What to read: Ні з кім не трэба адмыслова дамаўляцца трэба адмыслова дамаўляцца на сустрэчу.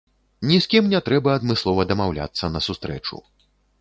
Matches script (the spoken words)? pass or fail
fail